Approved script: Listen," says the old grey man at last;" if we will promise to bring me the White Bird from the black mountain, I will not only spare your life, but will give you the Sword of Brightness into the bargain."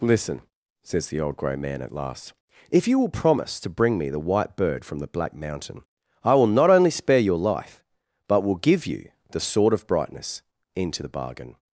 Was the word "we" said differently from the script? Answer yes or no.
yes